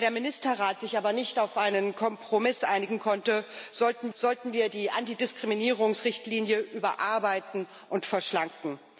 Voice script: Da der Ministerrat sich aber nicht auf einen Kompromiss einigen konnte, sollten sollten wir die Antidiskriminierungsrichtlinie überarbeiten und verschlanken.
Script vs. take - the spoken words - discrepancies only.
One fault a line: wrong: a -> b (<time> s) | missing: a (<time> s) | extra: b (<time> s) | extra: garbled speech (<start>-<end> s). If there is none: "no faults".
no faults